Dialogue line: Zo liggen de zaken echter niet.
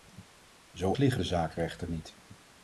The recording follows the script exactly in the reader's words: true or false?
true